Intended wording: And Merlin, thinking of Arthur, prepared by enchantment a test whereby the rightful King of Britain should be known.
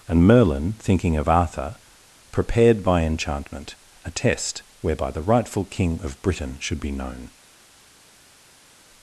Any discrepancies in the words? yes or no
no